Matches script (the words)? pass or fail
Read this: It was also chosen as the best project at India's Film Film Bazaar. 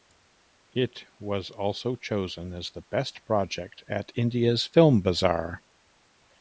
fail